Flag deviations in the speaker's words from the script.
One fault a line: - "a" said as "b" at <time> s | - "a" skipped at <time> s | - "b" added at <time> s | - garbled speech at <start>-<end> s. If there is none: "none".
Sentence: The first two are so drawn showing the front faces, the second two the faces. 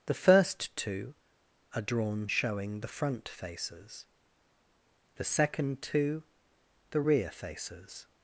- "so" skipped at 1.8 s
- "rear" added at 7.0 s